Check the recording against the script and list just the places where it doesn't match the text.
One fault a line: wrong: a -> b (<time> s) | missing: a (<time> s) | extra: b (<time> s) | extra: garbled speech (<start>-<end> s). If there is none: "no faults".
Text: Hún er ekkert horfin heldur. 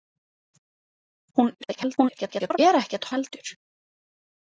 extra: garbled speech (1.6-2.6 s)
missing: horfin (3.1 s)